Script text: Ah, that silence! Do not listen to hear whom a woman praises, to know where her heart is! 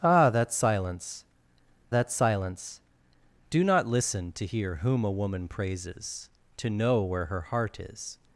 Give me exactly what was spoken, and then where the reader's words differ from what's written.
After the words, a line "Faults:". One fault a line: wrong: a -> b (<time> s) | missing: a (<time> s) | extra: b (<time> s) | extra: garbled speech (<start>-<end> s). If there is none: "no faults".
Ah, that silence that silence! Do not listen to hear whom a woman praises, to know where her heart is!
Faults:
extra: that silence (1.9 s)